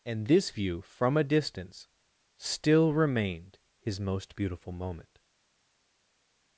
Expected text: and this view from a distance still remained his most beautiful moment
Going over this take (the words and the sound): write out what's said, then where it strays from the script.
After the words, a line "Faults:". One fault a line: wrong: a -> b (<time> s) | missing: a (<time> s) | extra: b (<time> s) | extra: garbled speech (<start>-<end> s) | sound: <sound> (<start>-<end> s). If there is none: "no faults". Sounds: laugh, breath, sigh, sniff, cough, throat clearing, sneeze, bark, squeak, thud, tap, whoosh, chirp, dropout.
and this view from a distance still remained his most beautiful moment
Faults:
no faults